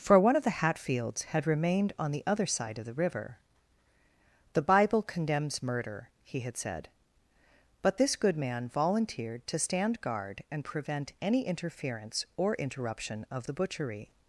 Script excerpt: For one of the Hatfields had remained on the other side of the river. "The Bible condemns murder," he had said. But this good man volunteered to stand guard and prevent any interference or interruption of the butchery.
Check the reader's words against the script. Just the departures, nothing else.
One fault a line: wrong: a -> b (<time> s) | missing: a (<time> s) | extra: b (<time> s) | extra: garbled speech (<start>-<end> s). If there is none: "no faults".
no faults